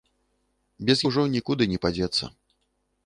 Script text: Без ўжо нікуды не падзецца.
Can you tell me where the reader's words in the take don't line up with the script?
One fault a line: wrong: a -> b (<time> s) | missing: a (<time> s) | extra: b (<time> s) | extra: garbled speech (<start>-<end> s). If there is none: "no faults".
no faults